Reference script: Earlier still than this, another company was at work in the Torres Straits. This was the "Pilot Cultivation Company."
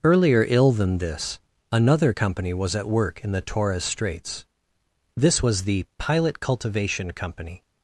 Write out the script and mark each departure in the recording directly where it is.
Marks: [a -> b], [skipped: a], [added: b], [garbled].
Earlier [still -> ill] than this, another company was at work in the Torres Straits. This was the "Pilot Cultivation Company."